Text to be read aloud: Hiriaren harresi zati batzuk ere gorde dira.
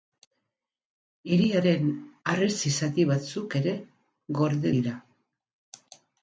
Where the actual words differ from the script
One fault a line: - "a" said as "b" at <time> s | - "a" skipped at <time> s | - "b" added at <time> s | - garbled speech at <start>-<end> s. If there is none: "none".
none